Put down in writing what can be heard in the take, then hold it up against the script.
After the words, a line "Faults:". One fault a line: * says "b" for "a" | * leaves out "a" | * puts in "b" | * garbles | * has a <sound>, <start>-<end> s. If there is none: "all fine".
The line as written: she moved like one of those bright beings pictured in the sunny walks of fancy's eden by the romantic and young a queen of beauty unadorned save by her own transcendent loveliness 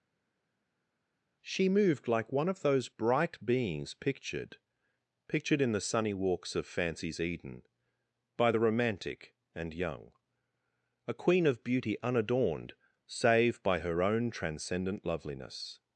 she moved like one of those bright beings pictured pictured in the sunny walks of fancy's eden by the romantic and young a queen of beauty unadorned save by her own transcendent loveliness
Faults:
* puts in "pictured"